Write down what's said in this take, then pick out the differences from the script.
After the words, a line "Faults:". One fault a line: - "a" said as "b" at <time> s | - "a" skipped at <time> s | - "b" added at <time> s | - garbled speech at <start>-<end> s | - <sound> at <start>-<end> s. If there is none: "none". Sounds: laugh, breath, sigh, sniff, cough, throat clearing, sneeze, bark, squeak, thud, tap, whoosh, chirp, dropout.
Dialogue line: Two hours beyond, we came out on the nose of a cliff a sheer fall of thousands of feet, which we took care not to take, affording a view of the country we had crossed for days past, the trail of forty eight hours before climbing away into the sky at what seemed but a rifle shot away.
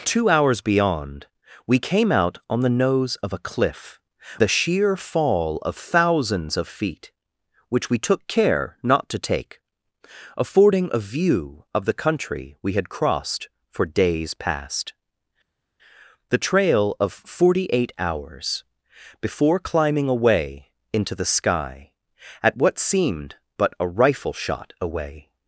Two hours beyond, we came out on the nose of a cliff a sheer fall of thousands of feet, which we took care not to take, affording a view of the country we had crossed for days past, the trail of forty eight hours before climbing away into the sky at what seemed but a rifle shot away.
Faults:
none